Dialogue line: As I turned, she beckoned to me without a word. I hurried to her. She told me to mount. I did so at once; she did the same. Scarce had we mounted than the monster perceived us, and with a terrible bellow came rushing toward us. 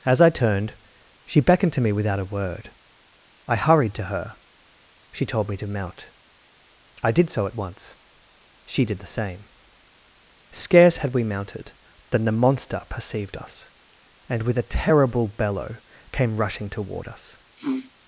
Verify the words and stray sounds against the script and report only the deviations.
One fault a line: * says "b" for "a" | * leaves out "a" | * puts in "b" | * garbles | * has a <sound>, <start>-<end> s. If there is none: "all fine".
* has a sniff, 17.6-17.9 s